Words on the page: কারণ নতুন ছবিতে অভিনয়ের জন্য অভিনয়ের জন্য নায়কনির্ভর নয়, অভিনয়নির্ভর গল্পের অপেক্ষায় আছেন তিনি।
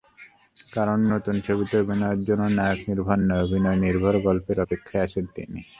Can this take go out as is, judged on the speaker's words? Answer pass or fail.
fail